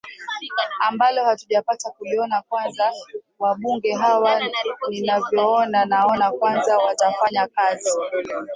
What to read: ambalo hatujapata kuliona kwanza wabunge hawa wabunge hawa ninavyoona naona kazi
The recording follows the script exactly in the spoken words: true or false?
false